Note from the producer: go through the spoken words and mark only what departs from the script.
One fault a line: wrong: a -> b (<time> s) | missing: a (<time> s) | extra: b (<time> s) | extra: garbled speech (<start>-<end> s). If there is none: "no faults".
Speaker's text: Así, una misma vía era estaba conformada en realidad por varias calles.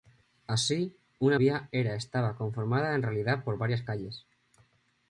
missing: misma (1.4 s)